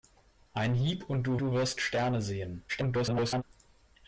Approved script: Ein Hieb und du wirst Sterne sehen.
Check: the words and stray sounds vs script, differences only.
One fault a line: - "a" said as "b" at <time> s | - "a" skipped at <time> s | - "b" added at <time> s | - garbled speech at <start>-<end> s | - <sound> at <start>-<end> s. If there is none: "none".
- "du" added at 1.4 s
- garbled speech at 2.7-3.4 s